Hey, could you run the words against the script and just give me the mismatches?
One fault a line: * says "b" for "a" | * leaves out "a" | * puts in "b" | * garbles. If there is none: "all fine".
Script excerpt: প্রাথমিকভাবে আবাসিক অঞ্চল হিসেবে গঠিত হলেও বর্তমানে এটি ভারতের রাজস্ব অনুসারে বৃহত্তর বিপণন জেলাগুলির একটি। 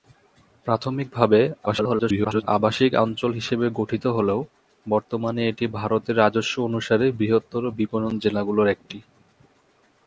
* garbles